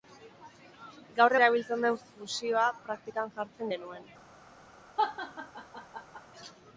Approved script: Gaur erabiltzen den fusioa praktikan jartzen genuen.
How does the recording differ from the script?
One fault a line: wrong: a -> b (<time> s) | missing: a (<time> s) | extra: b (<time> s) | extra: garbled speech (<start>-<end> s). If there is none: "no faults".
no faults